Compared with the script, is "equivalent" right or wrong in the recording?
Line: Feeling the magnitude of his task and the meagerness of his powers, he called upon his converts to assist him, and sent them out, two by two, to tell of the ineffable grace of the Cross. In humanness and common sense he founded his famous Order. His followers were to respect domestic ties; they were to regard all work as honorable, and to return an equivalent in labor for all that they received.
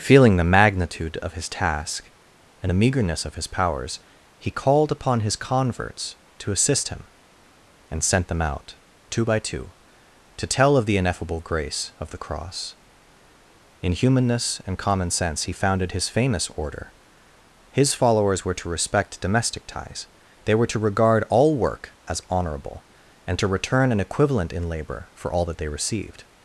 right